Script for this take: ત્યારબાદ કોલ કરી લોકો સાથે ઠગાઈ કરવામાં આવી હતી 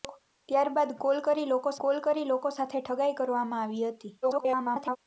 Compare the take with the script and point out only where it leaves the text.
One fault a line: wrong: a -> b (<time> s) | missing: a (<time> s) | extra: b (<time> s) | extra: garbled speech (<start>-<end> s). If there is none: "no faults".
extra: કોલ કરી લોકો (1.8 s)
extra: garbled speech (4.2-5.0 s)